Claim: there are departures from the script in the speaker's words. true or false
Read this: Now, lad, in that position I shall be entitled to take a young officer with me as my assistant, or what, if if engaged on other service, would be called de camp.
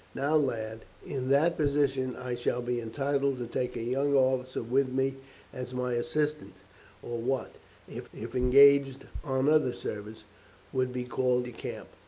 false